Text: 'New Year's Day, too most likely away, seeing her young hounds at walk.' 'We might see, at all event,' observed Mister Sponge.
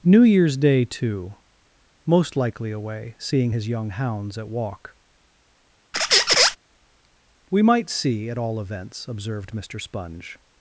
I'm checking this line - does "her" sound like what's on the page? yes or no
no